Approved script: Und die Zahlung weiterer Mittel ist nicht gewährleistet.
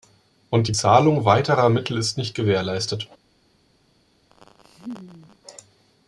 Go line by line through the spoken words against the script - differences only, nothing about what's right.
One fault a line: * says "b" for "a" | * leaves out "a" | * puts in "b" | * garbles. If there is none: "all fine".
all fine